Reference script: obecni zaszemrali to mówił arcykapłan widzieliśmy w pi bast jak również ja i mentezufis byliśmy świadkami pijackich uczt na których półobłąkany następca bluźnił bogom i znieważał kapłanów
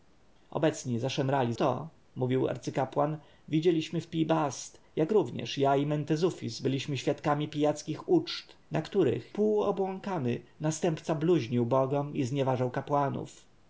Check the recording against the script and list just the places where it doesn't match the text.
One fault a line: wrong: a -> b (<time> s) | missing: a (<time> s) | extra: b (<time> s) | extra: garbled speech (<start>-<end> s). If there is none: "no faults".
no faults